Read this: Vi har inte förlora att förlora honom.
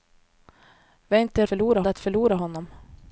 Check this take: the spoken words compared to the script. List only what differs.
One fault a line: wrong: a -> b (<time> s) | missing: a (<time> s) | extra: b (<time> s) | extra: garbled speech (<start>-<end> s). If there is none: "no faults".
no faults